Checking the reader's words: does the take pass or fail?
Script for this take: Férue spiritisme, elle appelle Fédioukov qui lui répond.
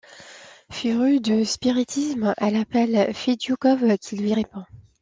fail